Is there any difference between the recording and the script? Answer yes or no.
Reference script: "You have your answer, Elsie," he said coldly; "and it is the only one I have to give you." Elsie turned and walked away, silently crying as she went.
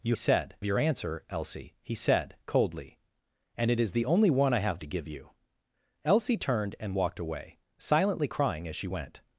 yes